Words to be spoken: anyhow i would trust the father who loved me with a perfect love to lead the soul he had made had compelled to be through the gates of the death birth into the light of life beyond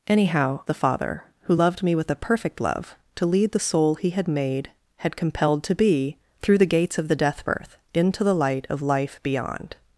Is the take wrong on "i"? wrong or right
wrong